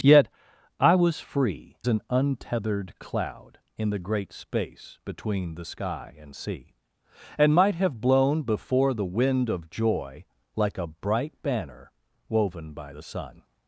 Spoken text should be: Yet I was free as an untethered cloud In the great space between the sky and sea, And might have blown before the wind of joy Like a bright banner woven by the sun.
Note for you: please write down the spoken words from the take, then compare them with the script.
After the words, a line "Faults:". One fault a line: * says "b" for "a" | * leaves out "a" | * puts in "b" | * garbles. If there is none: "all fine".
Yet I was free an untethered cloud In the great space between the sky and sea, And might have blown before the wind of joy Like a bright banner woven by the sun.
Faults:
* leaves out "as"